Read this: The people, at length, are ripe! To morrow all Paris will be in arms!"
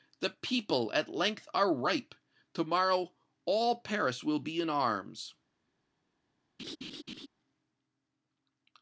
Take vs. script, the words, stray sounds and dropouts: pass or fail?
fail